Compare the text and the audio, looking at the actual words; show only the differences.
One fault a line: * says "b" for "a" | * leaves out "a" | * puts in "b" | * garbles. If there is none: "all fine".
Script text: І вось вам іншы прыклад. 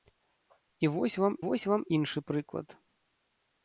* puts in "вось вам"